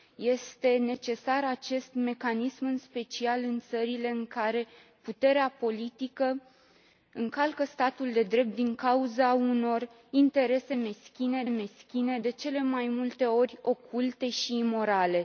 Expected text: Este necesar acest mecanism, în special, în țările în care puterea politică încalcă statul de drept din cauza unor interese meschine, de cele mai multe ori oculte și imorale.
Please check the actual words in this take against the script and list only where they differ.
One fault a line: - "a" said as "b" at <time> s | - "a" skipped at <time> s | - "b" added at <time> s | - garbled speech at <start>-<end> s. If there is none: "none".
- "meschine" added at 11.5 s